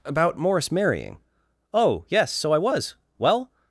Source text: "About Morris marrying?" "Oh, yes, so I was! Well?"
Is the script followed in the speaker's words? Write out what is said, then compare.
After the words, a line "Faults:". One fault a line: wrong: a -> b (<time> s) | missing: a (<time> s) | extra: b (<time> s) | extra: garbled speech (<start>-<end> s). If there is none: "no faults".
"About Morris marrying?" "Oh, yes, so I was! Well?"
Faults:
no faults